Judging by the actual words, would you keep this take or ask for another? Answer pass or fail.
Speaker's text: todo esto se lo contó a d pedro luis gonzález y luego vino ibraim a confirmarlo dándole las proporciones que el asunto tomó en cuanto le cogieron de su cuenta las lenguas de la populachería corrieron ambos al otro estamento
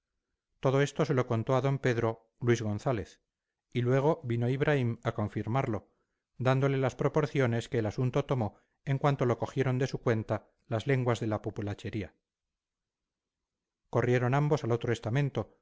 fail